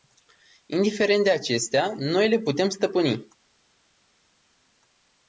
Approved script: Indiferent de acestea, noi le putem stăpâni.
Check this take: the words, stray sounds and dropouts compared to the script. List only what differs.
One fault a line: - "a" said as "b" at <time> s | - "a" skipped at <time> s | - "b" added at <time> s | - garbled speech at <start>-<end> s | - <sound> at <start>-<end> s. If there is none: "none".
none